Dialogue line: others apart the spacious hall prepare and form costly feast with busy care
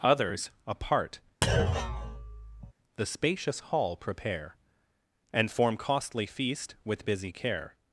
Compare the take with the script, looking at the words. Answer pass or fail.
pass